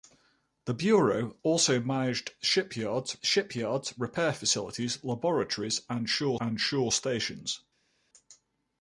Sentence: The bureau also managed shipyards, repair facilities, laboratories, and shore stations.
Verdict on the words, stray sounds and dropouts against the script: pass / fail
fail